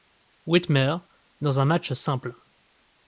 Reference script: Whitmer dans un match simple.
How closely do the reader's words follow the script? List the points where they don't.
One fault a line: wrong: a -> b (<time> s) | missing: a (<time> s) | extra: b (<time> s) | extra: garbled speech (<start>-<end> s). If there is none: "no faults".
no faults